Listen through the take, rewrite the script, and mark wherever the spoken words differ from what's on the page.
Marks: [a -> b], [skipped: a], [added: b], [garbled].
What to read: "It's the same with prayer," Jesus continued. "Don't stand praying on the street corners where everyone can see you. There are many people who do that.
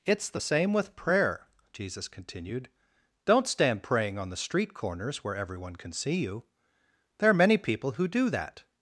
"It's the same with prayer," Jesus continued. "Don't stand praying on the street corners where everyone can see you. There are many people who do that.